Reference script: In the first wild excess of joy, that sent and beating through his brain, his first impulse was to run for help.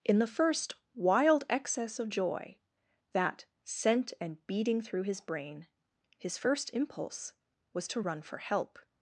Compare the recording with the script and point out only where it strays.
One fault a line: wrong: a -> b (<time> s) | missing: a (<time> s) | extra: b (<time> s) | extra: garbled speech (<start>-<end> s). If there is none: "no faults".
no faults